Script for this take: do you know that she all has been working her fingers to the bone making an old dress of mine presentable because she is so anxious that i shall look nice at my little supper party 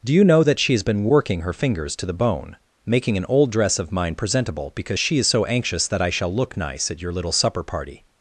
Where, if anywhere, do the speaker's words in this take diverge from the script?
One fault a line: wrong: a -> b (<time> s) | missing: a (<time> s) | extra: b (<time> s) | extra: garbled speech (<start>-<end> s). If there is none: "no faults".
missing: all (0.7 s)
wrong: my -> your (7.0 s)